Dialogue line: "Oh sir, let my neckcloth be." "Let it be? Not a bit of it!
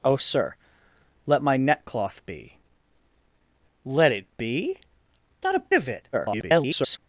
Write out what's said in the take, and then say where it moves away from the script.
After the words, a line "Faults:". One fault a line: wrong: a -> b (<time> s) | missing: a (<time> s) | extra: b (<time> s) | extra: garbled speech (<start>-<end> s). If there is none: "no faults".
"Oh sir, let my neckcloth be." "Let it be? Not a of it! [garbled]
Faults:
missing: bit (5.6 s)
extra: garbled speech (6.1-7.0 s)